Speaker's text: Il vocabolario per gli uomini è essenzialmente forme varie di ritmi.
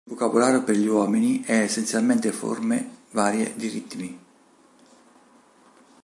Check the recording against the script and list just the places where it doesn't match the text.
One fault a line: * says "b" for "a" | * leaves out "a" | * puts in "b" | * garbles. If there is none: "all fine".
all fine